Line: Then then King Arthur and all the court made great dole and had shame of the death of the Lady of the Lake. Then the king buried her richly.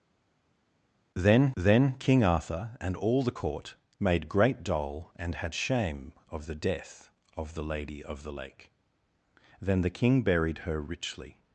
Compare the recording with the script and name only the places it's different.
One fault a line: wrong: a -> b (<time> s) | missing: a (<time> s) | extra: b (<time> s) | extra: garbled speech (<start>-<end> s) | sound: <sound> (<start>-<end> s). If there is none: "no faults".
no faults